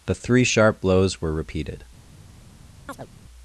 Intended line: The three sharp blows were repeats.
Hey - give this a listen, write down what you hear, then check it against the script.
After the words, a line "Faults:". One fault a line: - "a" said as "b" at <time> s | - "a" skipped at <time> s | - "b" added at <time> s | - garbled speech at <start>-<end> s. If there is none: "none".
The three sharp blows were repeated.
Faults:
- "repeats" said as "repeated" at 1.3 s